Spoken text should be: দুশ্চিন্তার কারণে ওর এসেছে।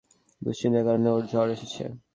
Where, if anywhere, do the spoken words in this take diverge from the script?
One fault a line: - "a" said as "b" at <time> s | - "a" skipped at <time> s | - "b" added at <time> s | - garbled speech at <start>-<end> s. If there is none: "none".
- "জ্বর" added at 1.3 s